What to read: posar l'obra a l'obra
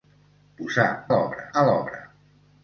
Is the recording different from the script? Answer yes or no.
no